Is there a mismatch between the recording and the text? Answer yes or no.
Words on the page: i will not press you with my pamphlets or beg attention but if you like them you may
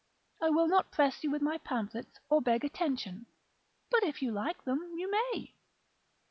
no